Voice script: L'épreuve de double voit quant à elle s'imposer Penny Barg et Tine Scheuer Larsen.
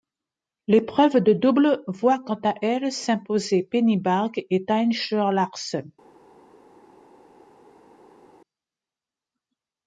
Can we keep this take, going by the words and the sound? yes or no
yes